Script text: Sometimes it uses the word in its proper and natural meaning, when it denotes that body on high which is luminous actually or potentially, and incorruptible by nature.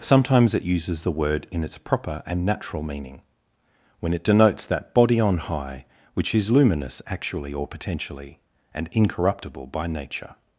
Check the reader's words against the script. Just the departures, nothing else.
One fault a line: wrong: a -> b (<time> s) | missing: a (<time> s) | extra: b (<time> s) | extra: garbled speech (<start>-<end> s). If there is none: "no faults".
no faults